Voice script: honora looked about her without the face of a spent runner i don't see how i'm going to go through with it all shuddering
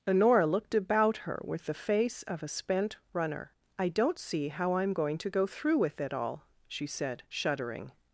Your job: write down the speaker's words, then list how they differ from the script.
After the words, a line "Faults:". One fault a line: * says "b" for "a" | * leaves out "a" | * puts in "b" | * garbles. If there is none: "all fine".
honora looked about her with the face of a spent runner i don't see how i'm going to go through with it all she said shuddering
Faults:
* says "with" for "without"
* puts in "she said"